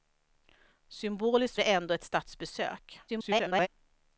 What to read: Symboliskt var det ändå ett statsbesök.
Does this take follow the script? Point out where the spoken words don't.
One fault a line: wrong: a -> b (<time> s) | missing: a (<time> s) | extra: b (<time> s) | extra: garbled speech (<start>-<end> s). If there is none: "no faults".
missing: var (1.6 s)
extra: garbled speech (3.1-3.7 s)